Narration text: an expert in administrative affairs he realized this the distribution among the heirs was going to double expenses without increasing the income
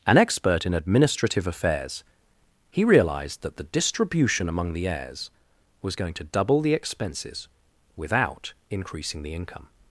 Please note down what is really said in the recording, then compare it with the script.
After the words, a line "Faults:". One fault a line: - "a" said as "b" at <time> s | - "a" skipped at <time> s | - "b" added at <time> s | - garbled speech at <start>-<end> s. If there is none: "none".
an expert in administrative affairs he realized that the distribution among the heirs was going to double the expenses without increasing the income
Faults:
- "this" said as "that" at 3.4 s
- "the" added at 6.6 s